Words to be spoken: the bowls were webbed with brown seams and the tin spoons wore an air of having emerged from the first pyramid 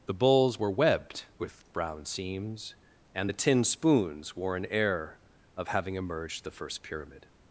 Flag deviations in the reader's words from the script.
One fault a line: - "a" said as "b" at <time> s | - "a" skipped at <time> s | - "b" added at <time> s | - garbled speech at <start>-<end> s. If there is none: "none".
- "from" skipped at 6.4 s